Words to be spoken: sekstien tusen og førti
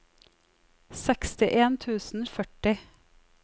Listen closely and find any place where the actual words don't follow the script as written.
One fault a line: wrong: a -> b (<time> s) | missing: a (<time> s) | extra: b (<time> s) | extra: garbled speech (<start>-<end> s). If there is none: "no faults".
no faults